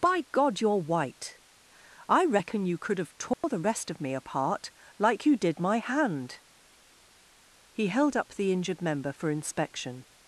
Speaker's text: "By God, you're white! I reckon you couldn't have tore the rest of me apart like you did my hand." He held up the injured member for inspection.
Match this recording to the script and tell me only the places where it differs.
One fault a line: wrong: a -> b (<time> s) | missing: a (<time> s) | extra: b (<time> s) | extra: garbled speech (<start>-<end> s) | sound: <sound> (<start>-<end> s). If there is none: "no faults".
wrong: couldn't -> could (2.8 s)
sound: dropout (3.3-3.4 s)